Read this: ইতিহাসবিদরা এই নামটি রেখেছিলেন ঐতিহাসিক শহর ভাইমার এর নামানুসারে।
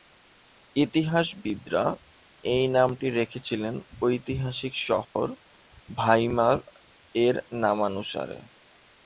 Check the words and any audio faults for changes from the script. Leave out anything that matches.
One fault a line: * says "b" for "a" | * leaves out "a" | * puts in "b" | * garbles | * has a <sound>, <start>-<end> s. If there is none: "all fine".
* has a dropout, 5.0-5.2 s